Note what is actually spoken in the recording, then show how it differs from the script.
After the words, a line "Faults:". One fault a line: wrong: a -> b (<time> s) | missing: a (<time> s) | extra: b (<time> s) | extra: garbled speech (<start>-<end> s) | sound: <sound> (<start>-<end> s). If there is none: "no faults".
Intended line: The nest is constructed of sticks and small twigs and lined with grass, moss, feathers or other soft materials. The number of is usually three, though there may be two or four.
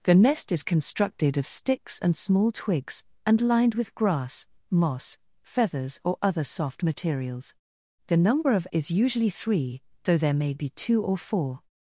The nest is constructed of sticks and small twigs and lined with grass, moss, feathers or other soft materials. The number of is usually three, though there may be two or four.
Faults:
no faults